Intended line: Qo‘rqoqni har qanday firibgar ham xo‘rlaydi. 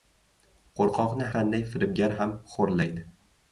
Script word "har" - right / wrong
wrong